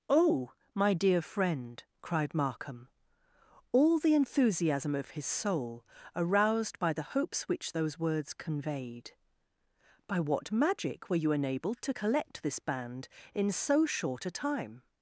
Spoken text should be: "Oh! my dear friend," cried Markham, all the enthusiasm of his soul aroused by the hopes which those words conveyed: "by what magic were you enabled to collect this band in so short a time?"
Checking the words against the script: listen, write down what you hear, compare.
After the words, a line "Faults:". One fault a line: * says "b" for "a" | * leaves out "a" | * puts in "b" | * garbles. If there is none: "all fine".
"Oh! my dear friend," cried Markham, all the enthusiasm of his soul aroused by the hopes which those words conveyed: "by what magic were you enabled to collect this band in so short a time?"
Faults:
all fine